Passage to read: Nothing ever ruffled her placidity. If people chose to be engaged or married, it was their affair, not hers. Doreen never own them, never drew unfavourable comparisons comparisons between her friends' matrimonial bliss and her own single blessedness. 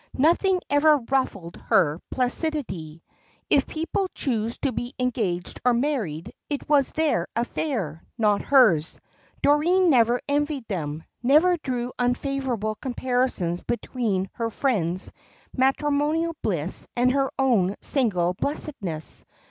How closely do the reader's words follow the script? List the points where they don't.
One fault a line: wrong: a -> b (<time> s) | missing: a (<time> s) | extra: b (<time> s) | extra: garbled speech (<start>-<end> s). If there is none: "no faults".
wrong: own -> envied (10.3 s)
missing: comparisons (13.6 s)